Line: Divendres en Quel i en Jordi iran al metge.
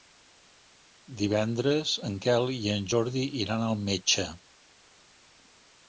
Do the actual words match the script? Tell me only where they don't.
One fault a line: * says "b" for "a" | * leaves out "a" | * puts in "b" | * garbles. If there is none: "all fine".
all fine